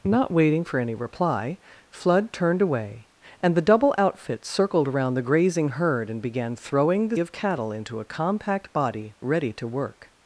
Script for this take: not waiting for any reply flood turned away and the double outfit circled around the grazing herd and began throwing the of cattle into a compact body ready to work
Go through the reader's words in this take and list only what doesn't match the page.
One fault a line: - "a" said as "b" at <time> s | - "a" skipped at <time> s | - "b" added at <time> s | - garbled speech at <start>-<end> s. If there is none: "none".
none